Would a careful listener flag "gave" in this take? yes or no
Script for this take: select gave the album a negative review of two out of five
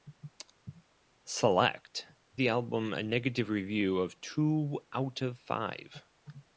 yes